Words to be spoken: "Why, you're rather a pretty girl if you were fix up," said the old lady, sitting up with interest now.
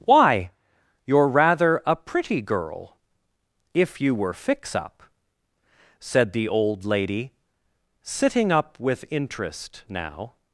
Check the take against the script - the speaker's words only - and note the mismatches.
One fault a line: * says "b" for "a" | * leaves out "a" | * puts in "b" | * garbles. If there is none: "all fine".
all fine